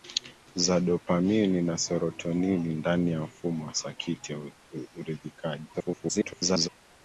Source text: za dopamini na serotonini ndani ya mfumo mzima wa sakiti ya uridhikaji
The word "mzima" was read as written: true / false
false